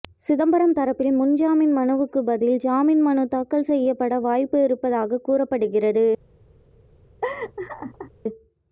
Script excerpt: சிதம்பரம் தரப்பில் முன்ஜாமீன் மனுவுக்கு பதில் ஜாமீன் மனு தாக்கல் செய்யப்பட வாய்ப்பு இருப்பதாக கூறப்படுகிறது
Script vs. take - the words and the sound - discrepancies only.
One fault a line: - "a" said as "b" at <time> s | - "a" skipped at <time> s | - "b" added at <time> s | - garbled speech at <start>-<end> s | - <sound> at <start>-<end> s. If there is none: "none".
- laugh at 7.2-8.1 s